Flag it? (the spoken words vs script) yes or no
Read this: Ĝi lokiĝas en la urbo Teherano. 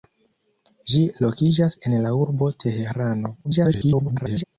yes